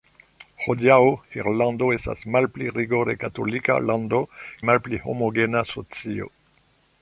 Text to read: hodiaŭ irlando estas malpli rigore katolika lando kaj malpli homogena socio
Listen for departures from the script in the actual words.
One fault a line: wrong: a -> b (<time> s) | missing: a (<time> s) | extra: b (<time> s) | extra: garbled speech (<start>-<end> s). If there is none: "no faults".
missing: kaj (4.3 s)